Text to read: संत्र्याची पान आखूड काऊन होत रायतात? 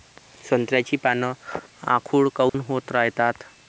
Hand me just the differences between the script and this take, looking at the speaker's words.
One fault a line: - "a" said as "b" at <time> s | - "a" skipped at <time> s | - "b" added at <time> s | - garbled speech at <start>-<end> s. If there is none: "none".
none